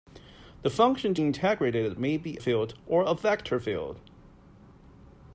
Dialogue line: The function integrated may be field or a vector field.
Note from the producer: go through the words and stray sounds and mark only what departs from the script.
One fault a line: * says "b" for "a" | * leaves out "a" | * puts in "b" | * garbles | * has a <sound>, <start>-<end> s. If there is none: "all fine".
all fine